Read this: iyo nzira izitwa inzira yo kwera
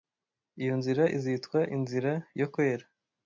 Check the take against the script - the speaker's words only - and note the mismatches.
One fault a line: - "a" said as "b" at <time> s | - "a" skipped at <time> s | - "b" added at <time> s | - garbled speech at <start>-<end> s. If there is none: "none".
none